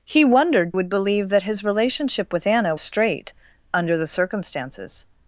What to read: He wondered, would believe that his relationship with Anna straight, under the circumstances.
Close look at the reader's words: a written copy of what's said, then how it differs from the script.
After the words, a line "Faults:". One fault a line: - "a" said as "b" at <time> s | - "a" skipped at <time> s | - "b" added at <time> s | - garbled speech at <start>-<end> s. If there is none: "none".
He wondered, would believe that his relationship with Anna straight, under the circumstances.
Faults:
none